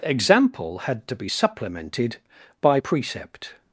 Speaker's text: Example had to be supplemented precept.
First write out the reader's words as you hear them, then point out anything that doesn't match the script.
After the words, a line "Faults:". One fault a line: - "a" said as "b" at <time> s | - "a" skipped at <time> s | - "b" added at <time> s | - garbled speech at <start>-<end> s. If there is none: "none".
Example had to be supplemented by precept.
Faults:
- "by" added at 2.6 s